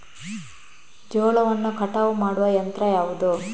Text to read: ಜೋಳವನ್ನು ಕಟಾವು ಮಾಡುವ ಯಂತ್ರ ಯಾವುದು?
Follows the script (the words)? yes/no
yes